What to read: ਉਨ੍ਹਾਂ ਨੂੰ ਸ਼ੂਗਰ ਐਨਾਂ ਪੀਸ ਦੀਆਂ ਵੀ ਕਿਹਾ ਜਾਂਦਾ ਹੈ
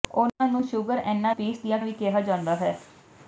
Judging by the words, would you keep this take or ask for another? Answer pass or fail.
pass